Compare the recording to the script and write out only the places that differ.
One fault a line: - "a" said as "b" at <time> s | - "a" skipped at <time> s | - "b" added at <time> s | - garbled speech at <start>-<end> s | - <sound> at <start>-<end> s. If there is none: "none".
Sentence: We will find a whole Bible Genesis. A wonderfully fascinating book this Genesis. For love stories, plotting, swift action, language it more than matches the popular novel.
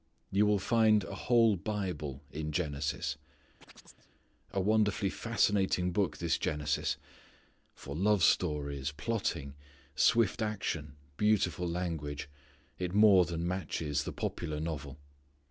- "We" said as "You" at 0.3 s
- "in" added at 2.3 s
- chirp at 3.6-4.1 s
- "beautiful" added at 11.2 s